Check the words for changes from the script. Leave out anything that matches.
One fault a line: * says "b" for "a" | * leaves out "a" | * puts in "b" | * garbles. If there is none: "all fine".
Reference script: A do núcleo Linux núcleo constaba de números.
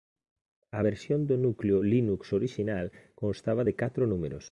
* puts in "versión"
* says "orixinal" for "núcleo"
* puts in "catro"